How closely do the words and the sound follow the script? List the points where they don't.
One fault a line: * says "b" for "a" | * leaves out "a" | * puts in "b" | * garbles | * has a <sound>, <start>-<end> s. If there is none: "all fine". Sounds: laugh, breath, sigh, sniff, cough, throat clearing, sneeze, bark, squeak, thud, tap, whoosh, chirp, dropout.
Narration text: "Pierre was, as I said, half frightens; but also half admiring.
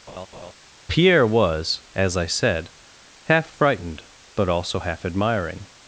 * has a laugh, 0.1-0.5 s
* says "frightened" for "frightens"